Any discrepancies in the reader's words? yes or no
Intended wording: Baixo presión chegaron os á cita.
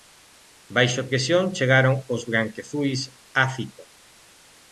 yes